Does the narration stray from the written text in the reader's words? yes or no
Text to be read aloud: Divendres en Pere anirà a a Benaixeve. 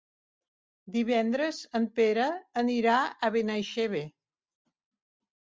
yes